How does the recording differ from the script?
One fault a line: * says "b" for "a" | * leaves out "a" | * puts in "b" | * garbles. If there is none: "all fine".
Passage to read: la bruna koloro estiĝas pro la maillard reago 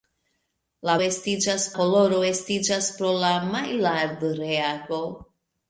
* says "estiĝas" for "bruna"